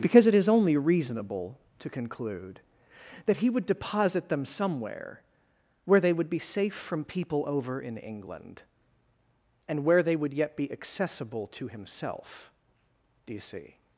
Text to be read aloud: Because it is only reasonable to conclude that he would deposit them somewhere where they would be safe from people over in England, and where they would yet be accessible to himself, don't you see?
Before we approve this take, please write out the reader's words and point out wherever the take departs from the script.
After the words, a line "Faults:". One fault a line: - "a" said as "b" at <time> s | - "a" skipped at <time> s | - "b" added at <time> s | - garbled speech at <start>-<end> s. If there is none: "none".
Because it is only reasonable to conclude that he would deposit them somewhere where they would be safe from people over in England, and where they would yet be accessible to himself, do you see?
Faults:
- "don't" said as "do" at 13.3 s